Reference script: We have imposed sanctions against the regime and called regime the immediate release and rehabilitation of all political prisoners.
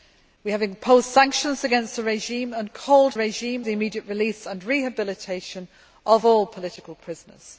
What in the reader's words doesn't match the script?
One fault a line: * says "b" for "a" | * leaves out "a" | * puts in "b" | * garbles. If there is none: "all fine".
all fine